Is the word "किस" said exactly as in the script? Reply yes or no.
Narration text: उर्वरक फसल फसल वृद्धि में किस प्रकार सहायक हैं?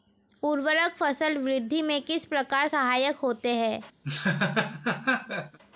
yes